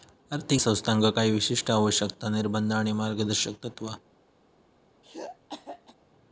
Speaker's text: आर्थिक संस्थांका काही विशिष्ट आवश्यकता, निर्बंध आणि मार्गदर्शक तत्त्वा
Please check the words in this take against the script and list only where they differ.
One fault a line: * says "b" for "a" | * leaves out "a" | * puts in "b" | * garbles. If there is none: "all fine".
all fine